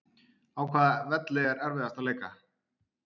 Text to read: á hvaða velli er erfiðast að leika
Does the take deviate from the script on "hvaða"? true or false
false